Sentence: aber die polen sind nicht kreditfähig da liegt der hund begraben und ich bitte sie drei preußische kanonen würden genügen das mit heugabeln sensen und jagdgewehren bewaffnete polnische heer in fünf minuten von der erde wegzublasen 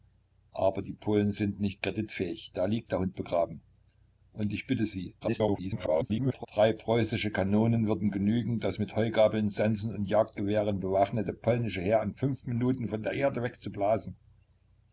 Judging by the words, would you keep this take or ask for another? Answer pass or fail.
fail